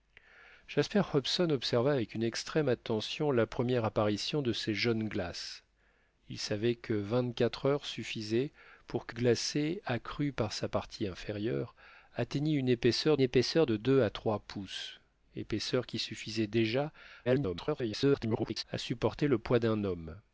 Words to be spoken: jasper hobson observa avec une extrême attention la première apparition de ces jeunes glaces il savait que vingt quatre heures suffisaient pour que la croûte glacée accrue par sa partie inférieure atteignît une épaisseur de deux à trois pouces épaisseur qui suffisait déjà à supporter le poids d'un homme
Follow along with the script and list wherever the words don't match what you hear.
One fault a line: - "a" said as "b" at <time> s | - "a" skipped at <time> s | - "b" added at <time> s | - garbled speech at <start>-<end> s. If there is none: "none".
- "la croûte" skipped at 9.2 s
- "épaisseur" added at 13.2 s
- garbled speech at 17.2-18.6 s